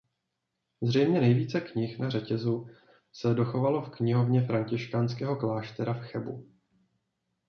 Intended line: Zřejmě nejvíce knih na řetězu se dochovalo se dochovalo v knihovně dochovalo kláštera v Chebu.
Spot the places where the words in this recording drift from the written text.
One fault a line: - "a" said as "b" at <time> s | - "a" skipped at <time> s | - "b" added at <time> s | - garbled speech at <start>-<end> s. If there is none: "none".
- "se dochovalo" skipped at 3.8 s
- "dochovalo" said as "františkánského" at 4.4 s